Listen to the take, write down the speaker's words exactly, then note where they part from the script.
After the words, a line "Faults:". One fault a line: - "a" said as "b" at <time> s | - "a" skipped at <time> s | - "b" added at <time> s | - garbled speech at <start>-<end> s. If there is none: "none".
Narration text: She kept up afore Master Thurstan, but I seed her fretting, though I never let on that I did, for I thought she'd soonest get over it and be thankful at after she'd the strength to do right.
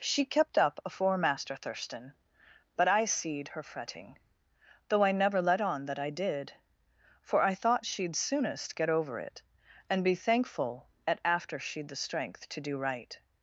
She kept up afore Master Thurstan, but I seed her fretting, though I never let on that I did, for I thought she'd soonest get over it and be thankful at after she'd the strength to do right.
Faults:
none